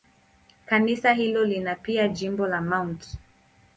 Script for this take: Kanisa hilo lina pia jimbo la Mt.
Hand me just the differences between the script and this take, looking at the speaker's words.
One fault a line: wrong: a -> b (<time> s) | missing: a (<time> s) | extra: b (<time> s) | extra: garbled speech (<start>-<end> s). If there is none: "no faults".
no faults